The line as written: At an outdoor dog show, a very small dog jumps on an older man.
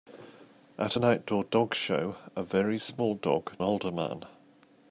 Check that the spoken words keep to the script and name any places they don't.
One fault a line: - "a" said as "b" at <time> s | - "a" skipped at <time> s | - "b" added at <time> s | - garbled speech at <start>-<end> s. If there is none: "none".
- "jumps on an" skipped at 3.6 s